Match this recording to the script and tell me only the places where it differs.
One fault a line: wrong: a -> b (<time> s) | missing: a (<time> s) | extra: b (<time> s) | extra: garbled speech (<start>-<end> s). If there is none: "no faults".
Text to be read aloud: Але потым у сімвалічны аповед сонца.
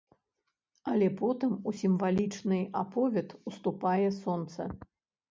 extra: уступае (3.5 s)